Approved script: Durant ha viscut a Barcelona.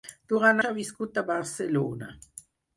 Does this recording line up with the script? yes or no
yes